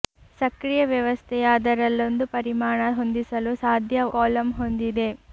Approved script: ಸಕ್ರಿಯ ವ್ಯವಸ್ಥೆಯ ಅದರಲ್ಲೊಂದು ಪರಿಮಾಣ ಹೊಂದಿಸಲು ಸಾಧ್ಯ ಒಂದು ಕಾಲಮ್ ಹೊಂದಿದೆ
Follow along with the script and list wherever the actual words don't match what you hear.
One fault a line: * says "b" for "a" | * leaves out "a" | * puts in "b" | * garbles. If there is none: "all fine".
* leaves out "ಒಂದು"